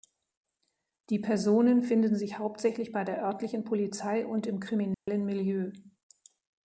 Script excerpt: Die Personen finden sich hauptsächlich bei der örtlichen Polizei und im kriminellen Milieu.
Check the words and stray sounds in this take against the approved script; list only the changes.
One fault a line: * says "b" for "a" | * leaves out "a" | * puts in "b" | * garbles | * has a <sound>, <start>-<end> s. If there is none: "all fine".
* has a dropout, 4.9-5.1 s